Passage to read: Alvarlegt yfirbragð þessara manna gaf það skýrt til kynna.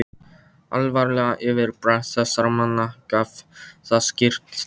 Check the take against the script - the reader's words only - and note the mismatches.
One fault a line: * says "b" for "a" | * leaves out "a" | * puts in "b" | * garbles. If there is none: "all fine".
all fine